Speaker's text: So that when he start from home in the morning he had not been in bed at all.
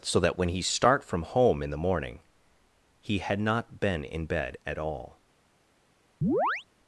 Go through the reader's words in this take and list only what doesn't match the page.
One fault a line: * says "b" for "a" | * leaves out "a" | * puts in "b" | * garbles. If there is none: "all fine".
all fine